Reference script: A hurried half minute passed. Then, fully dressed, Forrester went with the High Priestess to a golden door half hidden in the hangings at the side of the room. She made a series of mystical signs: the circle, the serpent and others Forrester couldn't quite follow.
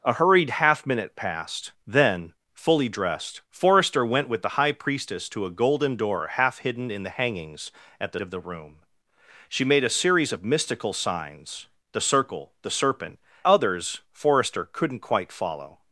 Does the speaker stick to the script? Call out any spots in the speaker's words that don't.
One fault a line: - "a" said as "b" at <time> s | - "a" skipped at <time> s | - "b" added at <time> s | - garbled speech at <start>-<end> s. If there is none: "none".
- "side" skipped at 8.2 s
- "and" skipped at 13.2 s